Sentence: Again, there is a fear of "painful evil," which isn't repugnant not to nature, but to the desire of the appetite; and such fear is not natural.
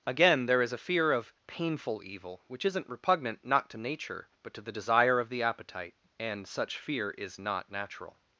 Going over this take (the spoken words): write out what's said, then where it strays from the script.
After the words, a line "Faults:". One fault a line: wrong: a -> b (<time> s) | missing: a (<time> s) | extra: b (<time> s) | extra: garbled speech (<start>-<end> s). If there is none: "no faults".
Again, there is a fear of "painful evil," which isn't repugnant not to nature, but to the desire of the appetite; and such fear is not natural.
Faults:
no faults